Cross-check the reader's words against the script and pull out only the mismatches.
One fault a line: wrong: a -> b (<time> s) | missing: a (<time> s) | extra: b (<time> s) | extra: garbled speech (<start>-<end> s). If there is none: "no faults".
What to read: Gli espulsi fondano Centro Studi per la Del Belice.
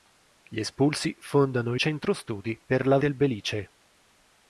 no faults